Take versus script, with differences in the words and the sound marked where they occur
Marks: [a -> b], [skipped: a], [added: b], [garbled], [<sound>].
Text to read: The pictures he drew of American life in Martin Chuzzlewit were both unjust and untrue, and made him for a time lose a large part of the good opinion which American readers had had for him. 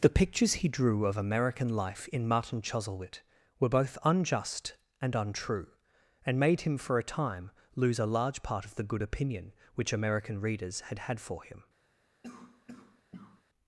The pictures he drew of American life in Martin Chuzzlewit were both unjust and untrue, and made him for a time lose a large part of the good opinion which American readers had had for him. [cough]